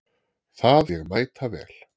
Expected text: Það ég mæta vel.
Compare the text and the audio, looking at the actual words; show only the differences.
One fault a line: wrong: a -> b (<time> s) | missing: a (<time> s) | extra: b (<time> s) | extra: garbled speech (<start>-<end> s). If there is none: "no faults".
no faults